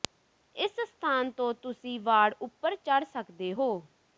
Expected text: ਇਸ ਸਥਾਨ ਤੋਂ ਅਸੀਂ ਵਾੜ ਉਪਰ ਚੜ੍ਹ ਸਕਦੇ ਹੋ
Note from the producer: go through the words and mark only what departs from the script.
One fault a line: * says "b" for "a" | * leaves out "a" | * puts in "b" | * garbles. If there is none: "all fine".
* says "ਤੁਸੀਂ" for "ਅਸੀਂ"